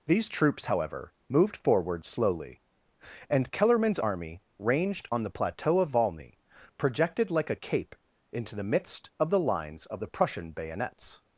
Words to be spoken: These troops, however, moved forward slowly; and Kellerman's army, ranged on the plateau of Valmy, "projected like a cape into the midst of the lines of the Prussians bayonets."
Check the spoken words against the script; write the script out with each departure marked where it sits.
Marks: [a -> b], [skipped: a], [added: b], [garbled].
These troops, however, moved forward slowly; and Kellerman's army, ranged on the plateau of Valmy, "projected like a cape into the midst of the lines of the [Prussians -> Prussian] bayonets."